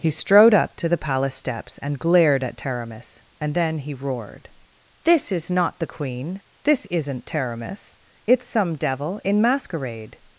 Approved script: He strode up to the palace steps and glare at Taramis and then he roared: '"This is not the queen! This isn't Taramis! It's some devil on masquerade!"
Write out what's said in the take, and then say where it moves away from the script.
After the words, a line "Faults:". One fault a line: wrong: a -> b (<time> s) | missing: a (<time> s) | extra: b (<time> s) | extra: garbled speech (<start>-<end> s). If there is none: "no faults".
He strode up to the palace steps and glared at Taramis and then he roared: '"This is not the queen! This isn't Taramis! It's some devil in masquerade!"
Faults:
wrong: glare -> glared (2.0 s)
wrong: on -> in (9.2 s)